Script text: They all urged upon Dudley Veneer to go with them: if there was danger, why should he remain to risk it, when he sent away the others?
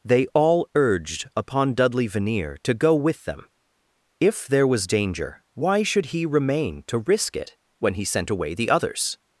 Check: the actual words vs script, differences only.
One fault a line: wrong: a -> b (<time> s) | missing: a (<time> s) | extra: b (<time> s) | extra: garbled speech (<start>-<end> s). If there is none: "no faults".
no faults